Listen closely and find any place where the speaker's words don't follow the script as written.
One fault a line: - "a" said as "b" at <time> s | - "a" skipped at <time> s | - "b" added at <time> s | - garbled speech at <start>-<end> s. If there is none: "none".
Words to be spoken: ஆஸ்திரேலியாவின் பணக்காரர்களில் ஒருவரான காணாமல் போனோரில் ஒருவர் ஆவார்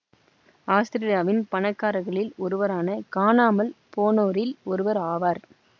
none